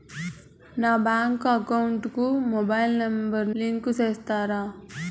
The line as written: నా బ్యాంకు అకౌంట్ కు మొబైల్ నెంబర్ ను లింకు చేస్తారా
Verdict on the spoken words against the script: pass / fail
fail